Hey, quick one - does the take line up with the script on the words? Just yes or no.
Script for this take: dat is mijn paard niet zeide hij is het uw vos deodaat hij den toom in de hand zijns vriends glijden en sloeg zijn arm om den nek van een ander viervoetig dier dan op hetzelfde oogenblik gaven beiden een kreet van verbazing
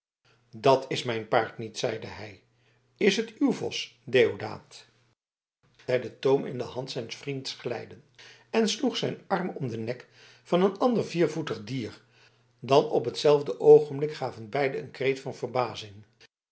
yes